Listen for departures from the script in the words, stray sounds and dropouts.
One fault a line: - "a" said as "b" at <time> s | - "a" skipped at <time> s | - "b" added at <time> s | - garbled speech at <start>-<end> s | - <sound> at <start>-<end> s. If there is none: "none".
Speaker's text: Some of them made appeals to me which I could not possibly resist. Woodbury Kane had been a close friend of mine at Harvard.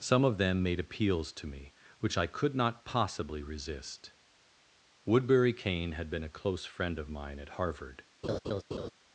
- laugh at 8.2-8.9 s